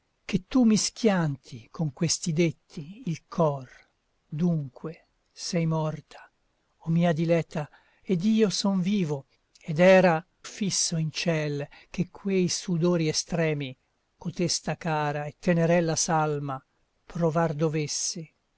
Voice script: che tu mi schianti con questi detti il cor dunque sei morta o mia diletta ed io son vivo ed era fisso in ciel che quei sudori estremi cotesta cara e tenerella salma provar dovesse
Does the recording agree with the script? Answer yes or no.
yes